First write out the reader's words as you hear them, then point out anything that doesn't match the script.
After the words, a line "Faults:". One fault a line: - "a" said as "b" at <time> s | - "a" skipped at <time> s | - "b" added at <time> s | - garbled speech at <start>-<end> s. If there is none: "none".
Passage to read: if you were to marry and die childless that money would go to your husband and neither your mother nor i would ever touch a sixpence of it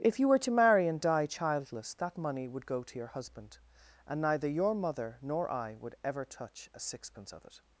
if you were to marry and die childless that money would go to your husband and neither your mother nor i would ever touch a sixpence of it
Faults:
none